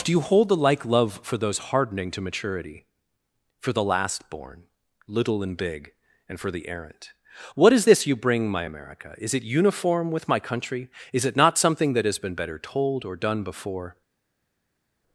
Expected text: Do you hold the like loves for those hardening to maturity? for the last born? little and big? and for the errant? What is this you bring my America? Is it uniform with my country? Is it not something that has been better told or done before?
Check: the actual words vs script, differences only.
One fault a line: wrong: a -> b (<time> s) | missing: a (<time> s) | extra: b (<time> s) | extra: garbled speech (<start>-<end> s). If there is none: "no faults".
wrong: loves -> love (0.8 s)